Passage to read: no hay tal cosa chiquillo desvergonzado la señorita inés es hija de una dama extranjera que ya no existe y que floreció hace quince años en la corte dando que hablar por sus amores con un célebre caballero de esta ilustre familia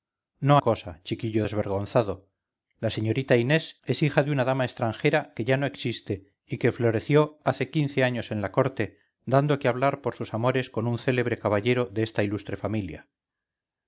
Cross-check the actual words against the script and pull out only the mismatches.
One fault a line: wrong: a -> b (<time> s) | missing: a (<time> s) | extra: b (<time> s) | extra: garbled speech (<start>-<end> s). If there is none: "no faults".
missing: hay tal (0.6 s)